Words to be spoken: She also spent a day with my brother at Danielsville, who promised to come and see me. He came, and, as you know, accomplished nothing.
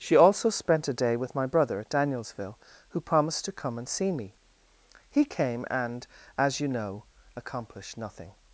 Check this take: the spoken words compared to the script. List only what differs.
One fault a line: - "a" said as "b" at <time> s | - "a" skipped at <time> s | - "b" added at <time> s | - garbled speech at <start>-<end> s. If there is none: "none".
none